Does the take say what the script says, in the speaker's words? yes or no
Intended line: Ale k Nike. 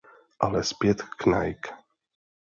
no